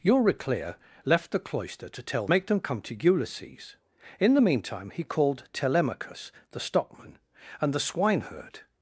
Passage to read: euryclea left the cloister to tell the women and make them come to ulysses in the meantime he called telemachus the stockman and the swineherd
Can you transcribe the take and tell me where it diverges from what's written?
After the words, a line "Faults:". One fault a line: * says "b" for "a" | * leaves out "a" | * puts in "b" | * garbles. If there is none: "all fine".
euryclea left the cloister to tell make them come to ulysses in the meantime he called telemachus the stockman and the swineherd
Faults:
* leaves out "the women and"